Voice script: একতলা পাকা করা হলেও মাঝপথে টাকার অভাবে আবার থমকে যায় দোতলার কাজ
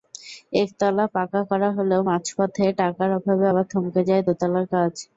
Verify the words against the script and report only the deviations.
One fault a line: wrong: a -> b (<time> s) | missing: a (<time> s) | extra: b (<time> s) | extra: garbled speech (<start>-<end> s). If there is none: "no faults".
no faults